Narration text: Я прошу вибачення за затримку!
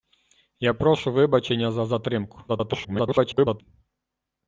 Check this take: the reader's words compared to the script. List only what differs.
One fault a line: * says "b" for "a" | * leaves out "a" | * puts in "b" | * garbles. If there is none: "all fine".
* garbles